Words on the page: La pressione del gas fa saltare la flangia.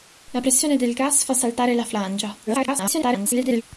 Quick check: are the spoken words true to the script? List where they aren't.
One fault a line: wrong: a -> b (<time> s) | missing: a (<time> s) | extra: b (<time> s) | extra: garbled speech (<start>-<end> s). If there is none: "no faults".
extra: garbled speech (2.5-3.6 s)